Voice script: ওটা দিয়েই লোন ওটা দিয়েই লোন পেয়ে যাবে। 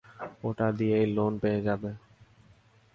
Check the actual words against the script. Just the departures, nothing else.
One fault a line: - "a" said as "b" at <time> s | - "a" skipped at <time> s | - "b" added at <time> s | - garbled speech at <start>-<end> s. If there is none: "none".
- "ওটা দিয়েই লোন" skipped at 1.3 s